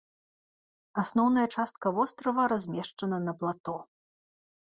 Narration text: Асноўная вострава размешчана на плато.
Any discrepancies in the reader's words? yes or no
yes